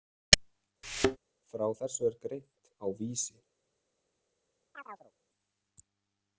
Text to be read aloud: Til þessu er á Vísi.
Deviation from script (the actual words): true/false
true